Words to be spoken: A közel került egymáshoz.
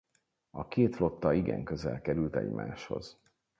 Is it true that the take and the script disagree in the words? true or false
true